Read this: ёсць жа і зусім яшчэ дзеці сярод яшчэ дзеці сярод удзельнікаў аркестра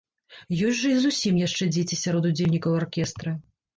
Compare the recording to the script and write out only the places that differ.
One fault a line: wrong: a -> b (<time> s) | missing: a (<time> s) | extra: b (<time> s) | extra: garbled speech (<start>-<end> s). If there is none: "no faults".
missing: яшчэ дзеці сярод (2.2 s)